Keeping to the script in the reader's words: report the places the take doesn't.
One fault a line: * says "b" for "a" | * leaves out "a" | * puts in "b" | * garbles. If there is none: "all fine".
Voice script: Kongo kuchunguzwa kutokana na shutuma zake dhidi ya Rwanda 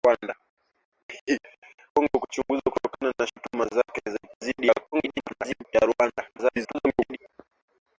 * garbles
* garbles